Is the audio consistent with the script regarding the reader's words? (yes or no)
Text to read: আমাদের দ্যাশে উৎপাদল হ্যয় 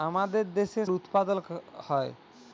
yes